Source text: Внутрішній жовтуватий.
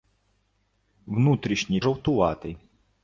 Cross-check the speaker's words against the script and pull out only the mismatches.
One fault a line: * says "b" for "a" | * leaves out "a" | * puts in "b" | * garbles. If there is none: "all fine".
all fine